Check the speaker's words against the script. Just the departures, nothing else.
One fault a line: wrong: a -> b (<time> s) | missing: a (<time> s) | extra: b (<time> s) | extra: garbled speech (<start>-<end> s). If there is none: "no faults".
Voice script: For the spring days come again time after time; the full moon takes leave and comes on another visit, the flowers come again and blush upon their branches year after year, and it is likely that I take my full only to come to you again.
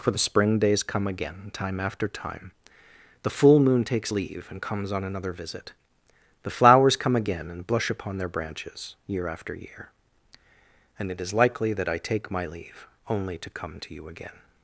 wrong: full -> leave (12.5 s)